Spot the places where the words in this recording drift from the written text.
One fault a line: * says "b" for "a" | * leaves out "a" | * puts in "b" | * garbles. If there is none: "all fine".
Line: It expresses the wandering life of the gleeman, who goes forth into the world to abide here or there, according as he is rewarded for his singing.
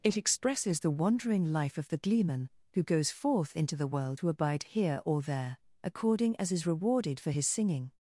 * leaves out "he"